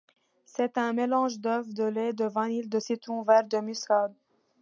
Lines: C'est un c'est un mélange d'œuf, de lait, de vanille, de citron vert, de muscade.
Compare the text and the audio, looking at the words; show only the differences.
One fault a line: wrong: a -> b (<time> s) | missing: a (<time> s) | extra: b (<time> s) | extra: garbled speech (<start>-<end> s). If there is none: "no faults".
missing: c'est un (0.9 s)